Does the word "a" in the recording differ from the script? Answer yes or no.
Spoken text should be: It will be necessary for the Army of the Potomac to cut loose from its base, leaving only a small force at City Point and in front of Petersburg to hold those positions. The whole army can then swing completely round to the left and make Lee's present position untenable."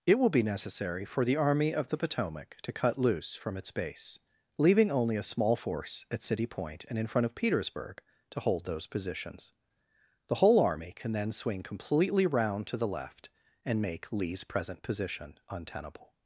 no